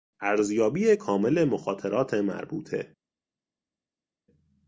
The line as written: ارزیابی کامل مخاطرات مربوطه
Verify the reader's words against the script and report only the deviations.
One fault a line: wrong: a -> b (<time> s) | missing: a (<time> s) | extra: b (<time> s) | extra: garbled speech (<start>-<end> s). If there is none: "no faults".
no faults